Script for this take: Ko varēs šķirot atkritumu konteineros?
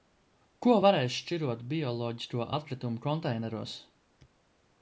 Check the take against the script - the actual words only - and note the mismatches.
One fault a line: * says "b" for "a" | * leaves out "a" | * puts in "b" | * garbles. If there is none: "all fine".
* puts in "bioloģisko"